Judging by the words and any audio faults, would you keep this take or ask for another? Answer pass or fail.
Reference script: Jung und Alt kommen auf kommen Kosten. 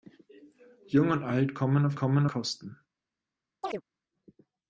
fail